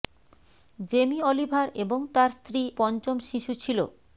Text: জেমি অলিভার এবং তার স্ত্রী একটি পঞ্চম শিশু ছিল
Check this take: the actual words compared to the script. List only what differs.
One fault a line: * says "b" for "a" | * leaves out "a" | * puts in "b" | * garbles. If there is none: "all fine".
* leaves out "একটি"